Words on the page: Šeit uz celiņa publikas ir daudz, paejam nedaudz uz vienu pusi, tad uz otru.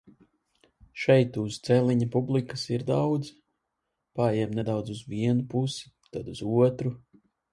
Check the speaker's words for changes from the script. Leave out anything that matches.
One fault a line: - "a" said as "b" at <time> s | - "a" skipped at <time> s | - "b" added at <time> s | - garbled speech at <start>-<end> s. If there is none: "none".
none